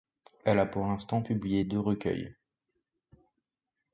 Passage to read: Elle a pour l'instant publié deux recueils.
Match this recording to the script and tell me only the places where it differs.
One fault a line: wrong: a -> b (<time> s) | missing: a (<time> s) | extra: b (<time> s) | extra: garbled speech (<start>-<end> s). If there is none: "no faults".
no faults